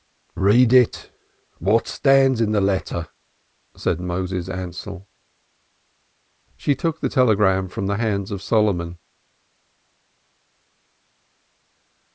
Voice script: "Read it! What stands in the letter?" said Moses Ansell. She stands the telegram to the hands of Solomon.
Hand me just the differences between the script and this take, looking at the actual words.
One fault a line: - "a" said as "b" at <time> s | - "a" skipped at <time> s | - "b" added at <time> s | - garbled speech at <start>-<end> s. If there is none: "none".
- "stands" said as "took" at 6.7 s
- "to" said as "from" at 7.7 s